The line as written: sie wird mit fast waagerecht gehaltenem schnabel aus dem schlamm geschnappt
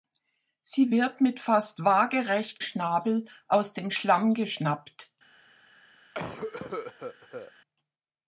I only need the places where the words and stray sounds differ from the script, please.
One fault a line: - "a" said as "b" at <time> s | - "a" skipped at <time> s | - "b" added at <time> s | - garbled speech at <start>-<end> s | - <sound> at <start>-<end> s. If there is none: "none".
- "gehaltenem" skipped at 2.6 s
- cough at 6.1-7.5 s